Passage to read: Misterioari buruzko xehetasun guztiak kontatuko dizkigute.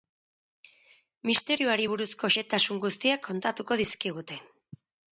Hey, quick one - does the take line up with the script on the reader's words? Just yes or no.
yes